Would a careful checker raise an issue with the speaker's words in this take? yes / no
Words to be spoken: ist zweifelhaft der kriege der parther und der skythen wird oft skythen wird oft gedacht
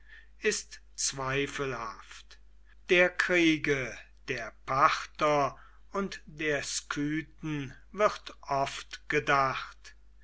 yes